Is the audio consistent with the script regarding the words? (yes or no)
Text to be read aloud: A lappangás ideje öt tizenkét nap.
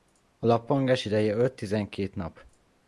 yes